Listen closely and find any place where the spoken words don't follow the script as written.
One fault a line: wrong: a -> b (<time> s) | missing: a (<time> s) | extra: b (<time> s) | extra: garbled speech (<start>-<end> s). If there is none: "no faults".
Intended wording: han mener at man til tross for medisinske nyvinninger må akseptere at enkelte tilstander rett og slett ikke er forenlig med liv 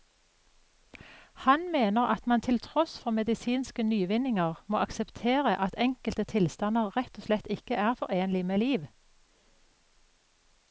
no faults